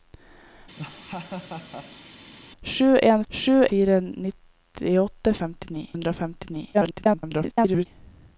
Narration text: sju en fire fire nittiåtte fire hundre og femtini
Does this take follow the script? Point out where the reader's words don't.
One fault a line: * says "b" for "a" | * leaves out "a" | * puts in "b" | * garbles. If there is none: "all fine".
* says "sju" for "fire"
* says "femtini" for "fire"
* garbles